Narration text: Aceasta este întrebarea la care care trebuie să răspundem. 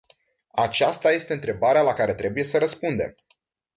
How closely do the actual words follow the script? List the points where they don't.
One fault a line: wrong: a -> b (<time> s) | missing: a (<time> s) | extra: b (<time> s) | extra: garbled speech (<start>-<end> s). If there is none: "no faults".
missing: care (2.1 s)